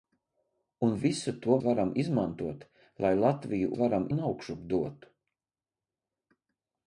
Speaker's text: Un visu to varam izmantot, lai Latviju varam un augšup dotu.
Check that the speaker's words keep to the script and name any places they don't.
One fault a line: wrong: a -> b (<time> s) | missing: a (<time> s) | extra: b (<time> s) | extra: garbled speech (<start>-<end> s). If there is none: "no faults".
no faults